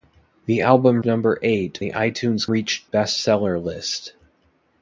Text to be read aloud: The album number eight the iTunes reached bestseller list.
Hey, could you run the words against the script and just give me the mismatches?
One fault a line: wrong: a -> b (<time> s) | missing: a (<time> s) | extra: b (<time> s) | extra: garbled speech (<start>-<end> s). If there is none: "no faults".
no faults